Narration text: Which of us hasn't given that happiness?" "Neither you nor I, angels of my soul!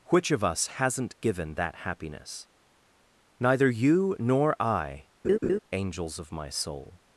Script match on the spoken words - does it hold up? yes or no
yes